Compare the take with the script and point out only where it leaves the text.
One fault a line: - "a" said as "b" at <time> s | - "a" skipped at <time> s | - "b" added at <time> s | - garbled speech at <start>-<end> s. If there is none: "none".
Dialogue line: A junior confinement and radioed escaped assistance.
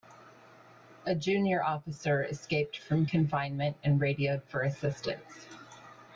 - "officer escaped from" added at 1.6 s
- "escaped" said as "for" at 4.4 s